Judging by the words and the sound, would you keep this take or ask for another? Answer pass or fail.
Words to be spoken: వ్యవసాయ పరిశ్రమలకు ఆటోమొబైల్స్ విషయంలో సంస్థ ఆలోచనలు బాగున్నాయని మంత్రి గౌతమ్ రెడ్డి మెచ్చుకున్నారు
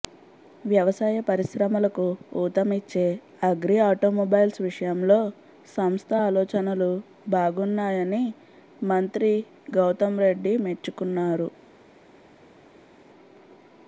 fail